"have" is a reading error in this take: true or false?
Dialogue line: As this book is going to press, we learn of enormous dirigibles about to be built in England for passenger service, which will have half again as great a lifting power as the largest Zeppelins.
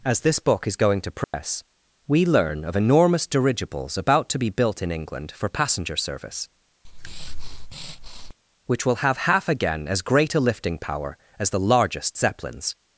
false